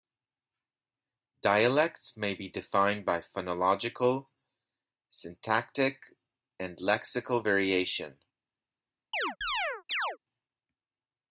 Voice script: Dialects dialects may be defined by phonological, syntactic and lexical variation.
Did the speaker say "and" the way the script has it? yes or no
yes